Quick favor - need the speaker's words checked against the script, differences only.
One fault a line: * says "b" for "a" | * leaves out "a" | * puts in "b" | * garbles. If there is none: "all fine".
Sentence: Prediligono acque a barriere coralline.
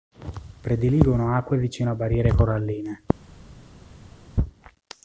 * puts in "vicino"